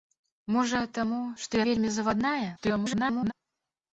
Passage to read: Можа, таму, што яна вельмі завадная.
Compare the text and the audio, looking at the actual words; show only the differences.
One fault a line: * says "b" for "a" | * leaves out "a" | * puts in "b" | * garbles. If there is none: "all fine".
* leaves out "яна"
* garbles